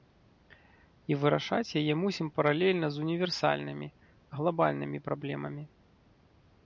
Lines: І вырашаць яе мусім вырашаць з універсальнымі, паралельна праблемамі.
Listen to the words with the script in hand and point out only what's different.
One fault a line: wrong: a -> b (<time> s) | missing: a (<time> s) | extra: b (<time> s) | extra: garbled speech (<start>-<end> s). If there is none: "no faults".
wrong: вырашаць -> паралельна (2.4 s)
wrong: паралельна -> глабальнымі (4.4 s)